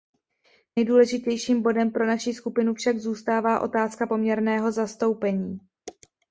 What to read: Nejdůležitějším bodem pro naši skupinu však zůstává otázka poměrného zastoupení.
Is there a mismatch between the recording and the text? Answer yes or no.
no